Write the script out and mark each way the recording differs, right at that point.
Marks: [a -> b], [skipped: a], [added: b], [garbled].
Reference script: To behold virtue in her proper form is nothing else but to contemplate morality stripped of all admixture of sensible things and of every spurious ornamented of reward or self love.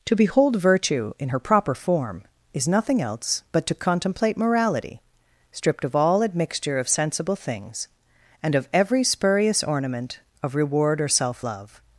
To behold virtue in her proper form is nothing else but to contemplate morality stripped of all admixture of sensible things and of every spurious [ornamented -> ornament] of reward or self love.